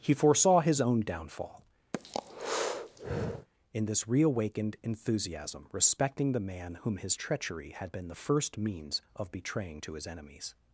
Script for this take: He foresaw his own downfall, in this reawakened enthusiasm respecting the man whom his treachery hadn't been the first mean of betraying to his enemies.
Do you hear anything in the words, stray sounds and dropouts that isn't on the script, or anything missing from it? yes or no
yes